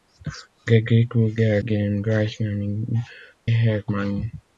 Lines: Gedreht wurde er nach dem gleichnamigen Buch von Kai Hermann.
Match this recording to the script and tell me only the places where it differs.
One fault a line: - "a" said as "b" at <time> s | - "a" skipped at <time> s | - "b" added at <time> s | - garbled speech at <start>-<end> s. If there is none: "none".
- "nach" skipped at 1.6 s
- "Buch von Kai" skipped at 3.1 s